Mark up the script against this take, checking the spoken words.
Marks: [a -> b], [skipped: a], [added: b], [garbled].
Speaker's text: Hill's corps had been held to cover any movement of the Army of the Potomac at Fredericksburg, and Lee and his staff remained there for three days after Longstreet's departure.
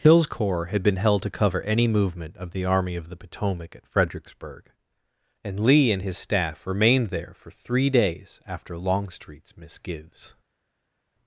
Hill's corps had been held to cover any movement of the Army of the Potomac at Fredericksburg, and Lee and his staff remained there for three days after Longstreet's [departure. -> misgives]